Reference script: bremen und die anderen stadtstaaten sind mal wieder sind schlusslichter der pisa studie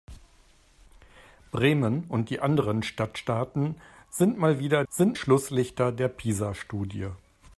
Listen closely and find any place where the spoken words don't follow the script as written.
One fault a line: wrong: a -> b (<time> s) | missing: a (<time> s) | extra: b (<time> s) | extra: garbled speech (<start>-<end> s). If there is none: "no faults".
no faults